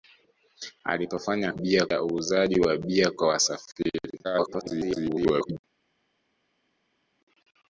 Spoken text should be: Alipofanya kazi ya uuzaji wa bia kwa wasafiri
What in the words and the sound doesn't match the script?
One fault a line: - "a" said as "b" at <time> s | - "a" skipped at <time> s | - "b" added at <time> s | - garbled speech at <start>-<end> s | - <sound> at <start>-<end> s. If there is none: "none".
- "kazi" said as "bia" at 1.5 s
- garbled speech at 4.2-5.6 s